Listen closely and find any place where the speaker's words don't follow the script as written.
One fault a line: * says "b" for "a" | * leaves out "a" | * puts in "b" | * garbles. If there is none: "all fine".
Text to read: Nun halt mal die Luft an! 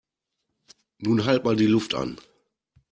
all fine